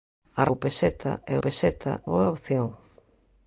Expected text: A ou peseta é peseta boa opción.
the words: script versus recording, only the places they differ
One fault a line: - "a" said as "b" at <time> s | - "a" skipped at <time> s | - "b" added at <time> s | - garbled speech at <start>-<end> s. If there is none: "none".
none